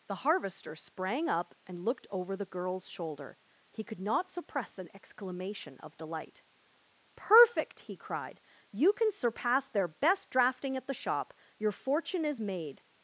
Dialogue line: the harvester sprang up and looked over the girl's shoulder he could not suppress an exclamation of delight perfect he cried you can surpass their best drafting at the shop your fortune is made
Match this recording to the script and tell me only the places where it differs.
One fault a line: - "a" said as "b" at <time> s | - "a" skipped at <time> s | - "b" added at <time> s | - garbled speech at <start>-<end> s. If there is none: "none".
none